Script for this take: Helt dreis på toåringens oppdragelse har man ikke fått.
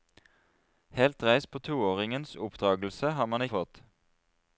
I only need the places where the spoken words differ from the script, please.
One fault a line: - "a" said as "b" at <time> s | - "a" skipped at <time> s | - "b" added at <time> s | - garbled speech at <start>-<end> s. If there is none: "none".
- "ikke" skipped at 3.4 s